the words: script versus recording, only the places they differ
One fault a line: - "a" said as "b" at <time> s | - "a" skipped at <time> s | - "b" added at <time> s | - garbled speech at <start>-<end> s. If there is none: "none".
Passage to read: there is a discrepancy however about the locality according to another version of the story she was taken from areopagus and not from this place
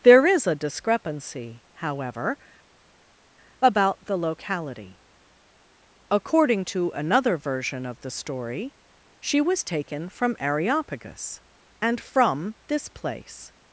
- "not" skipped at 12.0 s